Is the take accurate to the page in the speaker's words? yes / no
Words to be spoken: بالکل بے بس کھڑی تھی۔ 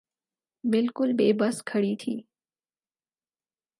yes